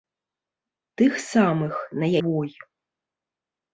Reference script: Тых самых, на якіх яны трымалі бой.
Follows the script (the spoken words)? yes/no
no